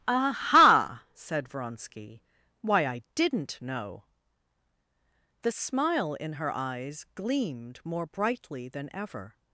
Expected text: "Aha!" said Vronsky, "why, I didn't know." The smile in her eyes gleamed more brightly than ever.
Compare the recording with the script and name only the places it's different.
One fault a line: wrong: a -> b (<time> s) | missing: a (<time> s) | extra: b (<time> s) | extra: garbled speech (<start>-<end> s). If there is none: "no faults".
no faults